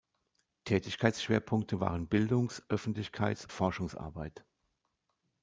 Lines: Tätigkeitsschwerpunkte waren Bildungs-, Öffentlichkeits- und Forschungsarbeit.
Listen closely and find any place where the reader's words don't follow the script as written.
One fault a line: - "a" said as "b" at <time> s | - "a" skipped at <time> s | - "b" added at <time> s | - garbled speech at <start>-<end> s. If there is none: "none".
- "und" skipped at 3.5 s